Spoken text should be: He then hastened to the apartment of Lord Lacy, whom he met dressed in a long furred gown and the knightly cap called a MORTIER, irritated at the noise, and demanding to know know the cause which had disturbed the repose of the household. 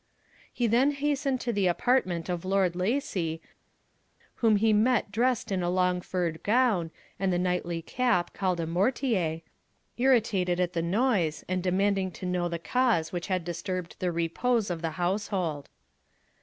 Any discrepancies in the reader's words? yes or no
yes